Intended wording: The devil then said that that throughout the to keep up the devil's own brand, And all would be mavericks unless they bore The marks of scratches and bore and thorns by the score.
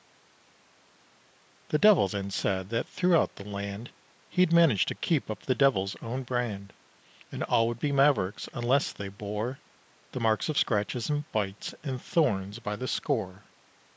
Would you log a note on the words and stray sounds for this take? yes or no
yes